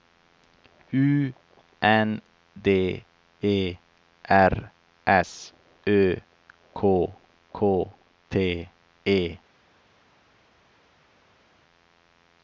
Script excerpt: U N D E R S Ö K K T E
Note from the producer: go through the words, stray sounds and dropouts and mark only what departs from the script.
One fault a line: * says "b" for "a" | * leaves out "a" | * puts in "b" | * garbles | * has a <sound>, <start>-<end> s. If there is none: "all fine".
all fine